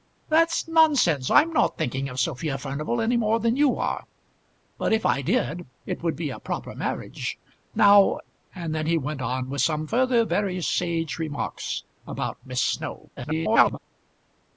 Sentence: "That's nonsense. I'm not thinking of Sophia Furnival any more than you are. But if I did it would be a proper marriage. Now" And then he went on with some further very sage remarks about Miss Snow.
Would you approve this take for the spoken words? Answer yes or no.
no